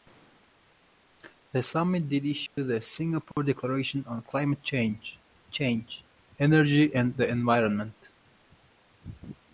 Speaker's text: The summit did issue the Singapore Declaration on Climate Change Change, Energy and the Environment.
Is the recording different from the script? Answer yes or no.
no